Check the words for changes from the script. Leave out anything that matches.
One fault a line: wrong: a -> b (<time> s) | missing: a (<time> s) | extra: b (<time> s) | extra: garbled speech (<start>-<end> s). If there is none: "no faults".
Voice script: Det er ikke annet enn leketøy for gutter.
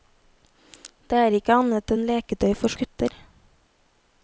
no faults